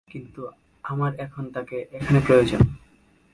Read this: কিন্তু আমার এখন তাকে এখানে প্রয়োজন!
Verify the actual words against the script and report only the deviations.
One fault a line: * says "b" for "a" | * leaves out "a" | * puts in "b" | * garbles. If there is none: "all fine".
all fine